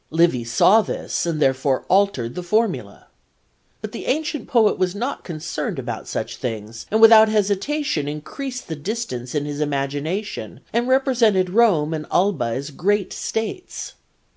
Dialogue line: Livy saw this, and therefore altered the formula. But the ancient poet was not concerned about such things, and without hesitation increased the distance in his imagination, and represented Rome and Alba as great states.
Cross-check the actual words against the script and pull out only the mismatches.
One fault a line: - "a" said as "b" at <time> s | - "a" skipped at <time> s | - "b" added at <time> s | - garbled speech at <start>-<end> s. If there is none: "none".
none